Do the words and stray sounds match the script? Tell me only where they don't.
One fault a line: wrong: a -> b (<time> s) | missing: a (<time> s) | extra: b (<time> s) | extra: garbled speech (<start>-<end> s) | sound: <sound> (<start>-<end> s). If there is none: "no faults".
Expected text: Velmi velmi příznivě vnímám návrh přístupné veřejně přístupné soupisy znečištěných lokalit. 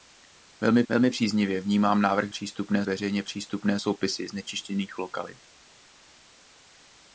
no faults